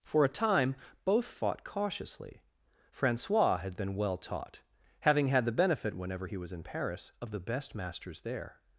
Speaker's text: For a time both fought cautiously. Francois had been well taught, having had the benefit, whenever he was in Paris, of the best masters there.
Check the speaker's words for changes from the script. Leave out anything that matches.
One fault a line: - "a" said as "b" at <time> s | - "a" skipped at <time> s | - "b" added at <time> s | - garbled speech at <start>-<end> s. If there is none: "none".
none